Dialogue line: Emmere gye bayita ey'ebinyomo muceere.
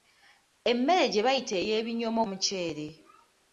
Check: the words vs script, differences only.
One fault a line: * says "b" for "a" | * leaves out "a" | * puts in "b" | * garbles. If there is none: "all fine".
all fine